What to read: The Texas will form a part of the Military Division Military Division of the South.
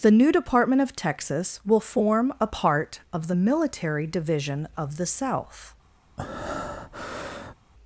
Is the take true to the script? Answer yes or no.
no